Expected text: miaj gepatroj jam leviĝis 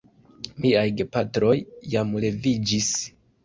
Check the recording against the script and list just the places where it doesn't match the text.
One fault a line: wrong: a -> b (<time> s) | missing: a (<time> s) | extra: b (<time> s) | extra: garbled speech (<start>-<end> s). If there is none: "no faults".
no faults